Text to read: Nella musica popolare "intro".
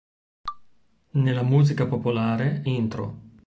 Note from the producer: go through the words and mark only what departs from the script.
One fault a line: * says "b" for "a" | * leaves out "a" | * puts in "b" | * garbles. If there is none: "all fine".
all fine